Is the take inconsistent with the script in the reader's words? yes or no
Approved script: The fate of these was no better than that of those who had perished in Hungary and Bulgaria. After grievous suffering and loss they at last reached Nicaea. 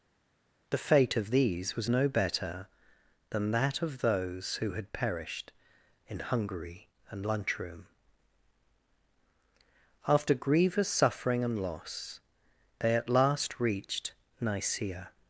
yes